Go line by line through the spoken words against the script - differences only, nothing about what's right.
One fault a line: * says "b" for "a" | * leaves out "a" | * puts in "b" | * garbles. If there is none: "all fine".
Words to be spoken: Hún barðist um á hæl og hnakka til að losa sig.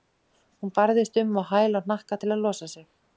all fine